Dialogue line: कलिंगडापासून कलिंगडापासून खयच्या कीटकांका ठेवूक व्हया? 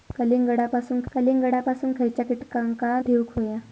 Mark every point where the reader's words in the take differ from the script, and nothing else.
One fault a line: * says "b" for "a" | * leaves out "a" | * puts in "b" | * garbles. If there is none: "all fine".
all fine